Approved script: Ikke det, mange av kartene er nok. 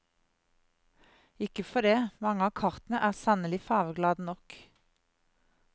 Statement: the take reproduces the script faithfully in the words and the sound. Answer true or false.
false